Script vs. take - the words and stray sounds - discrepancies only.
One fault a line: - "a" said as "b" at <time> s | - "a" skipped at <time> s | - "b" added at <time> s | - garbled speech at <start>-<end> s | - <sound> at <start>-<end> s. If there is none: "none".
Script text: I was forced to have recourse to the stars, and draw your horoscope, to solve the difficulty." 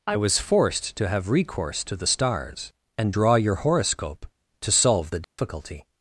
- dropout at 5.2-5.4 s